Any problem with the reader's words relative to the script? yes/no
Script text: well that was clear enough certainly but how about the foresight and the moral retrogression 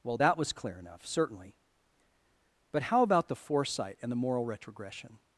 no